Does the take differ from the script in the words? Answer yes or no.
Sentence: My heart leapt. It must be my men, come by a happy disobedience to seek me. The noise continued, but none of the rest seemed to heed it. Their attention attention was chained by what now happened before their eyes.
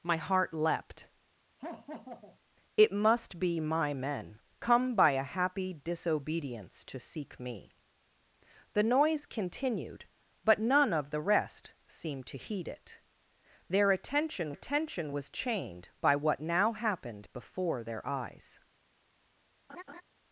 no